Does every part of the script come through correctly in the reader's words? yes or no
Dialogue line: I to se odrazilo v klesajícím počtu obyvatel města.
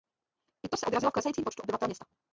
yes